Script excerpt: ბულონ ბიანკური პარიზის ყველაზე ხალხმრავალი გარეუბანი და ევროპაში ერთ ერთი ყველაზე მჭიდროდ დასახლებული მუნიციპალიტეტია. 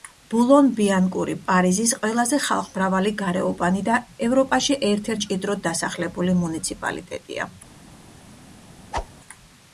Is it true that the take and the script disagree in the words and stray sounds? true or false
true